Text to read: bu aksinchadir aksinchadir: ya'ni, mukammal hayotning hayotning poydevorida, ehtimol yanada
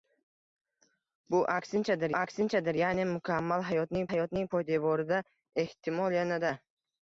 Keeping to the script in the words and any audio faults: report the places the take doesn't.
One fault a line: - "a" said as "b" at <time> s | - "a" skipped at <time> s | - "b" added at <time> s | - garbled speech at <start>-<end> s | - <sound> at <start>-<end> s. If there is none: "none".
none